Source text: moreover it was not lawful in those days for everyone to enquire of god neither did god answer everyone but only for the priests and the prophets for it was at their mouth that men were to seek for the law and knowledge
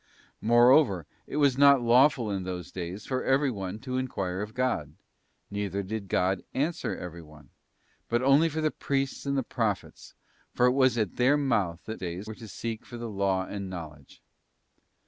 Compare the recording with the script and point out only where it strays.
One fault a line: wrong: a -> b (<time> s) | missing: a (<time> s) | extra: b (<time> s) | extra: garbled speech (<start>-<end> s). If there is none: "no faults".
wrong: men -> days (12.0 s)